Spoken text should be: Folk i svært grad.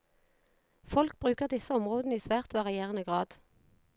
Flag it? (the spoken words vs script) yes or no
yes